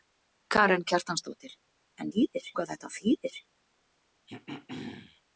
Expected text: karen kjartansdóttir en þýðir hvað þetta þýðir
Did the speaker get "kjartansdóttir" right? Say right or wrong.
right